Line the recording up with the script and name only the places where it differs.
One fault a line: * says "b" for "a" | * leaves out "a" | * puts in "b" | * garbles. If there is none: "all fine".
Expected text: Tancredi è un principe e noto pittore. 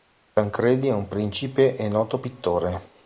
all fine